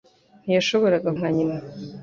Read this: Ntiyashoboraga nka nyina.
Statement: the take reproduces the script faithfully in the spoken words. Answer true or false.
true